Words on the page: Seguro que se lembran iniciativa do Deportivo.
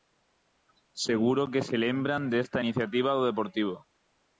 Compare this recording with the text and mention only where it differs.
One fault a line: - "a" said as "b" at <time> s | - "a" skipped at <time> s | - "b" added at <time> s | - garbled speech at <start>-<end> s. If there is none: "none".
- "desta" added at 2.3 s